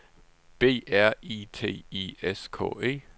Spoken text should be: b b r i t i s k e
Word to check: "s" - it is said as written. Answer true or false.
true